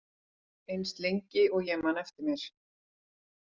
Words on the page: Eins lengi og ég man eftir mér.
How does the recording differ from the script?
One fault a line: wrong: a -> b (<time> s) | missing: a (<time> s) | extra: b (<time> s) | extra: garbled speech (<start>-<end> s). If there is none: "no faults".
no faults